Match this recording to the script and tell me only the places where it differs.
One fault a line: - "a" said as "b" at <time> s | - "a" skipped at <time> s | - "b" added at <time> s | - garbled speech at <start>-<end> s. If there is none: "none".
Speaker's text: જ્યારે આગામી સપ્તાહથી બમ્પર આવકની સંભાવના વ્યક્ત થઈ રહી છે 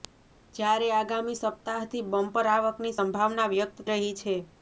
- "થઈ" skipped at 3.9 s